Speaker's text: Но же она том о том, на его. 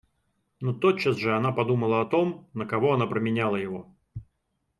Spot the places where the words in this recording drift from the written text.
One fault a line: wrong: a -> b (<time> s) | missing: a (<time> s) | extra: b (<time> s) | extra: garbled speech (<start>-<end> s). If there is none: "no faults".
extra: тотчас (0.7 s)
wrong: том -> подумала (1.5 s)
extra: кого она променяла (2.6 s)